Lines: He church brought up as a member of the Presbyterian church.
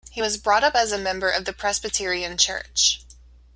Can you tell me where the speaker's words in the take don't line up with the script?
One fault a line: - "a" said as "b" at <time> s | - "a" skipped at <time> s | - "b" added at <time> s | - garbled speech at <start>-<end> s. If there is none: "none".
- "church" said as "was" at 0.2 s